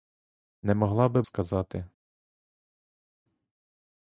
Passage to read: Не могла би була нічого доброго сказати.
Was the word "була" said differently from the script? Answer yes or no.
yes